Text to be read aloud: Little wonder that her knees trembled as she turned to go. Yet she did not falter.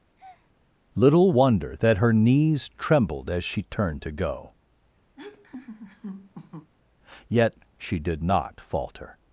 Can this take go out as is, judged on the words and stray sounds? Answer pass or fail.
fail